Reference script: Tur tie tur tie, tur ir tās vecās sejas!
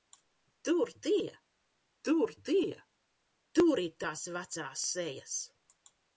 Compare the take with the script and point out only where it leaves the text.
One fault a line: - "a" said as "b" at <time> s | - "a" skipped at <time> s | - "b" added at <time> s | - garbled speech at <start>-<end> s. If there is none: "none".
none